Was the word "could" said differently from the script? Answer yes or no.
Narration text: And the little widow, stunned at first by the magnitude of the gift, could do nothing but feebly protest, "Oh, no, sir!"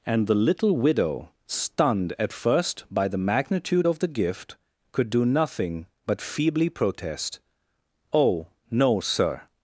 no